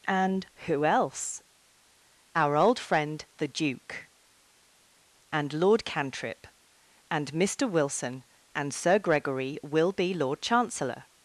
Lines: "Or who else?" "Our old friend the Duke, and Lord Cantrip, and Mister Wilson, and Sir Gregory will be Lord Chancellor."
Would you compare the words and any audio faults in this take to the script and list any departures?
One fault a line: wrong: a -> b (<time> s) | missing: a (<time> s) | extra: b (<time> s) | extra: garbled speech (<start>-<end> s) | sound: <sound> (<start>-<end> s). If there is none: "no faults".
wrong: Or -> And (0.1 s)